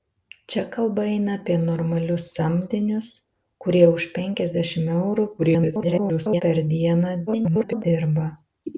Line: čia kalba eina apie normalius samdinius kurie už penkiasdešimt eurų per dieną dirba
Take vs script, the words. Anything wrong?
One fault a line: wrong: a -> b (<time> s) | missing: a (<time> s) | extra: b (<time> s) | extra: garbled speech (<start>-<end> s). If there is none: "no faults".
extra: garbled speech (5.4-6.4 s)
extra: garbled speech (7.3-7.8 s)